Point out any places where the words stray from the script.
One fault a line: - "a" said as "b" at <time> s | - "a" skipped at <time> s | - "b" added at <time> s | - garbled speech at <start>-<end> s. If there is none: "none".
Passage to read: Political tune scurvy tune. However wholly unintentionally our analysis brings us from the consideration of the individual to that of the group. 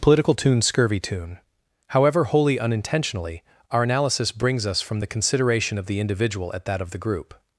- "to" said as "at" at 6.5 s